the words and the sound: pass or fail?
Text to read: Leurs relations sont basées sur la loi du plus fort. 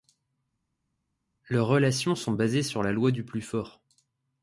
pass